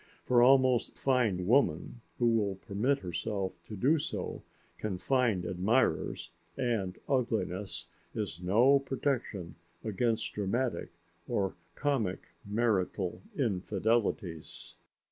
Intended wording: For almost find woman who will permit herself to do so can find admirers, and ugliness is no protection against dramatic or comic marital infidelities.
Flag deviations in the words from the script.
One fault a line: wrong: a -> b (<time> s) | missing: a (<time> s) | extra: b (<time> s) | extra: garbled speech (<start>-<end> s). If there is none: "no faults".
no faults